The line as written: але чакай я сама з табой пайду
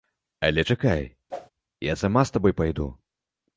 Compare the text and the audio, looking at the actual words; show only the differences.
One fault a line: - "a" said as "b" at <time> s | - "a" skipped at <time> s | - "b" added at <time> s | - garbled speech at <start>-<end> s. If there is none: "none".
none